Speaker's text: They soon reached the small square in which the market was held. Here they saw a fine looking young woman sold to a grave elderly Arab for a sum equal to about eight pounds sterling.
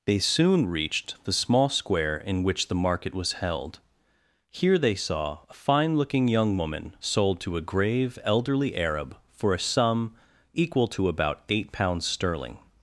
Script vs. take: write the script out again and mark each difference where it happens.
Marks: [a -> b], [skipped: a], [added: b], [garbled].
They soon reached the small square in which the market was held. Here they saw a fine looking young woman sold to a grave elderly Arab for a sum equal to about eight pounds sterling.